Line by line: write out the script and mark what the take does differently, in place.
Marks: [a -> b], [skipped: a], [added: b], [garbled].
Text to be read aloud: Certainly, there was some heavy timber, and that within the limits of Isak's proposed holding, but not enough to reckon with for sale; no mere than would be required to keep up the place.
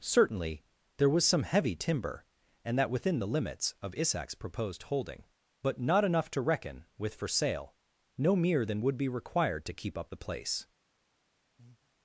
Certainly, there was some heavy timber, and that within the limits of Isak's proposed holding, but not enough to reckon with for sale; no mere than would be required to keep up the place.